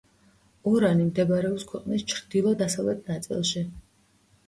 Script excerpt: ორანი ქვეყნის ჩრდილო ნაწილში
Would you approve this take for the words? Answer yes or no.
no